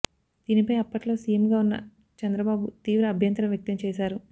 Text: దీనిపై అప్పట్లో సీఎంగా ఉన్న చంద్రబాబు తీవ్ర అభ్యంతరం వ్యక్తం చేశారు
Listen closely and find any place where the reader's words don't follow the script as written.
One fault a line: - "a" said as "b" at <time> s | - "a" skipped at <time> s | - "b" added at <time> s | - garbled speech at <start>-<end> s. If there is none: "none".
none